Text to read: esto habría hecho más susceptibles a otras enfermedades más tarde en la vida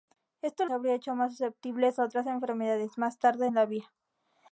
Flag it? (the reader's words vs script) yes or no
no